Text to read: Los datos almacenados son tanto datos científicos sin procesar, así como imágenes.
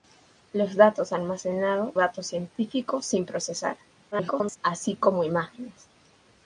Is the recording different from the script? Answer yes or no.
yes